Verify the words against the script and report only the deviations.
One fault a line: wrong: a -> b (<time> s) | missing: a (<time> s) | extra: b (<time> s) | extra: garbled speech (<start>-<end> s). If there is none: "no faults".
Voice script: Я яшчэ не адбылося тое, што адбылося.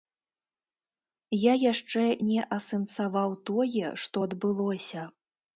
wrong: адбылося -> асэнсаваў (2.6 s)